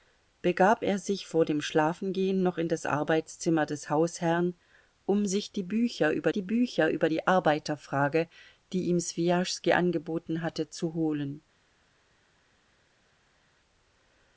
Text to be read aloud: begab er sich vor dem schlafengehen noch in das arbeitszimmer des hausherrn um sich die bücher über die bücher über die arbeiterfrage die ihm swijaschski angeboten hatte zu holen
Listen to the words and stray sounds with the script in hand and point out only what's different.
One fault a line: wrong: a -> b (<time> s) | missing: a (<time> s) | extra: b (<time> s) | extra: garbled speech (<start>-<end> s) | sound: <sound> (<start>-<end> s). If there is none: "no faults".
no faults